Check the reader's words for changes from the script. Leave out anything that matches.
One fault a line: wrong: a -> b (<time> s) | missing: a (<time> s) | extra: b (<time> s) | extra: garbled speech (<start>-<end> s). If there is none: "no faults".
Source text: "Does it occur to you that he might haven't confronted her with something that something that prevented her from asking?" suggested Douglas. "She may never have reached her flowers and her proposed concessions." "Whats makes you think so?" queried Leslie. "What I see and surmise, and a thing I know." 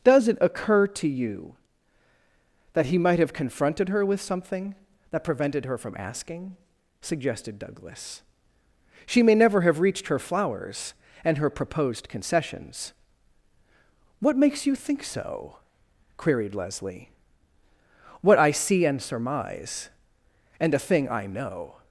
wrong: haven't -> have (3.2 s)
missing: something that (5.2 s)
wrong: Whats -> What (14.2 s)